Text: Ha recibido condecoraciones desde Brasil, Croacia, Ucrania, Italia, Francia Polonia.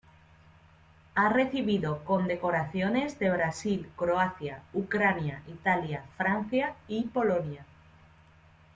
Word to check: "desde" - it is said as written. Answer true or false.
false